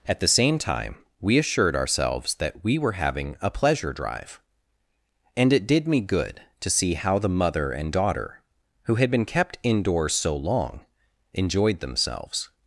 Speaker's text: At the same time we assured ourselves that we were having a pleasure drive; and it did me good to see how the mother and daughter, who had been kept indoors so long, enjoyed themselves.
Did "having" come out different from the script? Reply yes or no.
no